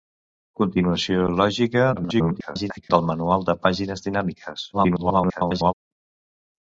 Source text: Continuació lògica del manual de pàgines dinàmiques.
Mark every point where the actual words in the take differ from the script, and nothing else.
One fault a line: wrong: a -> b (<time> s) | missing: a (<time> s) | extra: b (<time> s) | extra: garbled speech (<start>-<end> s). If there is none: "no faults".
extra: garbled speech (2.0-2.9 s)
extra: garbled speech (4.7-5.7 s)